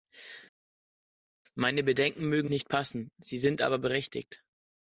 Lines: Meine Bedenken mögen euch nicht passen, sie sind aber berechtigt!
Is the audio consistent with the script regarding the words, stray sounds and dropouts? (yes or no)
no